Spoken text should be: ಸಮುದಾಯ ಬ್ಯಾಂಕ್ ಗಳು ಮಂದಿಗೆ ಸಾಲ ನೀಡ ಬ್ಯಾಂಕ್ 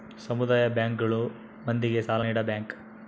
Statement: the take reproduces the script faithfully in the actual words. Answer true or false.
true